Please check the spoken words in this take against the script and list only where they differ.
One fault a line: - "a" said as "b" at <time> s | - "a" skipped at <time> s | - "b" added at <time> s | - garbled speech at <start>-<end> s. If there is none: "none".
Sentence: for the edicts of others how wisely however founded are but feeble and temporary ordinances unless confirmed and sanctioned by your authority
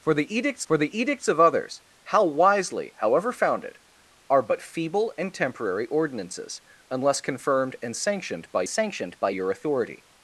- "for the edicts" added at 0.6 s
- "sanctioned by" added at 8.7 s